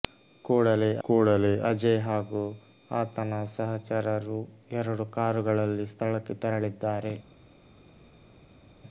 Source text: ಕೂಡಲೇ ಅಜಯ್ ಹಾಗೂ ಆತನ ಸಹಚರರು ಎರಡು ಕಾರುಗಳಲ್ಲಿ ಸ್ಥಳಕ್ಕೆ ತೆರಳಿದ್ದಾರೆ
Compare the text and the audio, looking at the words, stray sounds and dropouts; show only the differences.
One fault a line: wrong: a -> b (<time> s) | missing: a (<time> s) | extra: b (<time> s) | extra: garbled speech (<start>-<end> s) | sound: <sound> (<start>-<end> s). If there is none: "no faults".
extra: ಕೂಡಲೇ (1.0 s)